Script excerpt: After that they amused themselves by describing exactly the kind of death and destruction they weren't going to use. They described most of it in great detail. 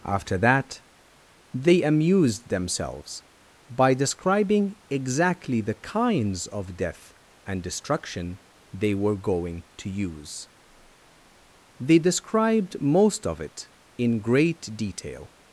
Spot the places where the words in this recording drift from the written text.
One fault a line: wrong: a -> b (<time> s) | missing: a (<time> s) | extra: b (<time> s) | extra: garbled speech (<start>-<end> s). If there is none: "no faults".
wrong: kind -> kinds (5.7 s)
wrong: weren't -> were (8.9 s)